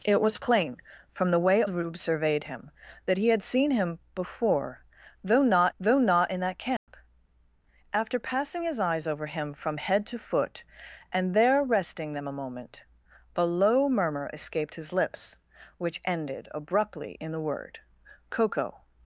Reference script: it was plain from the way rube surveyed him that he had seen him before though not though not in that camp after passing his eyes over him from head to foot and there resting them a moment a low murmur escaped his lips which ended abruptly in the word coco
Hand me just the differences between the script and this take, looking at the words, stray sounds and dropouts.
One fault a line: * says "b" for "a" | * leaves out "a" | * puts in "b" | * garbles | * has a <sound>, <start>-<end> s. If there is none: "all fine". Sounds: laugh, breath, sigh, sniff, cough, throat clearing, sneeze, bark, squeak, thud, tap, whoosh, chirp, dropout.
* has a dropout, 6.8-6.9 s